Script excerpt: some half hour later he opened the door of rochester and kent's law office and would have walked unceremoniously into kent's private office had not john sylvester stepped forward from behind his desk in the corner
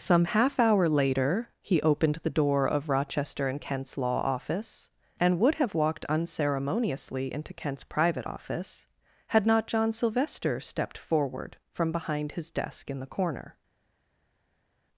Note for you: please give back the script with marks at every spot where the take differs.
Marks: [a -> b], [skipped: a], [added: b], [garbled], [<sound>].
some half hour later he opened the door of rochester and kent's law office and would have walked unceremoniously into kent's private office had not john sylvester stepped forward from behind his desk in the corner